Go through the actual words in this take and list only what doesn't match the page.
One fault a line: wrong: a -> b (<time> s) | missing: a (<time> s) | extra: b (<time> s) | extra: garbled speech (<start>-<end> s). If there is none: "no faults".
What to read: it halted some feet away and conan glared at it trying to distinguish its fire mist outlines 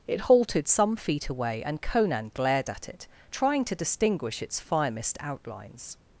no faults